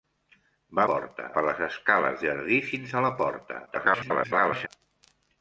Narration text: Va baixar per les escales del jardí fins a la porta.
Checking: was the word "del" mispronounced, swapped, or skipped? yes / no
yes